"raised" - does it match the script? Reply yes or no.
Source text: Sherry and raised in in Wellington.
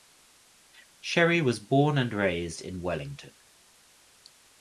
yes